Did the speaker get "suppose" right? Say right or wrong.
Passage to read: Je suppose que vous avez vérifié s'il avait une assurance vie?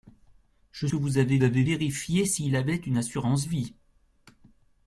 wrong